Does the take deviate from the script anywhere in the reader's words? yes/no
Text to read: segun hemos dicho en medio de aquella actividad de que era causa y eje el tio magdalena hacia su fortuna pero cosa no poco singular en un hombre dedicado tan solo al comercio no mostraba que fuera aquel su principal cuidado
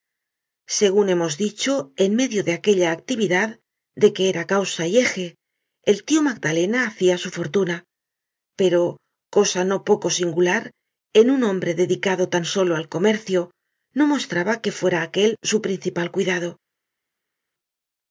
no